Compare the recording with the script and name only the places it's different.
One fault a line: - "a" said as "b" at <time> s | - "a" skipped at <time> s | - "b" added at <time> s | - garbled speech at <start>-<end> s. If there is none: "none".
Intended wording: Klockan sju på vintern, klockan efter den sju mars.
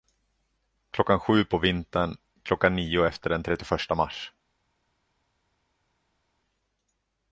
- "nio" added at 2.8 s
- "sju" said as "trettioförsta" at 3.4 s